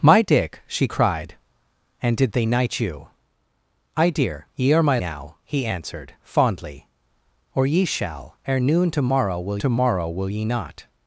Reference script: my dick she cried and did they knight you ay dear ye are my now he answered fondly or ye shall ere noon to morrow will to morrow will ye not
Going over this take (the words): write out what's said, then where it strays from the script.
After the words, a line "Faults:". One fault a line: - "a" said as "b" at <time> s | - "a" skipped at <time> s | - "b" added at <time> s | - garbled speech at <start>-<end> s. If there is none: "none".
my dick she cried and did they knight you ay dear ye are my now he answered fondly or ye shall ere noon to morrow will to morrow will ye not
Faults:
none